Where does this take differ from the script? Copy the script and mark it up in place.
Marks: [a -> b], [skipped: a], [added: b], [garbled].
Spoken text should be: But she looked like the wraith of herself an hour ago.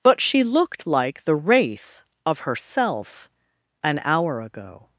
But she looked like the wraith of herself an hour ago.